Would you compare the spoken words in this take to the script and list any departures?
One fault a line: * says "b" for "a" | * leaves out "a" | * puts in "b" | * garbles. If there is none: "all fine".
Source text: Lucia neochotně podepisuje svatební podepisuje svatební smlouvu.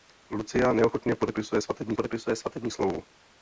all fine